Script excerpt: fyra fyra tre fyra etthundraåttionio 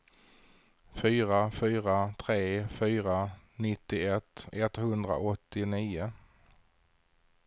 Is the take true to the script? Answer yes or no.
no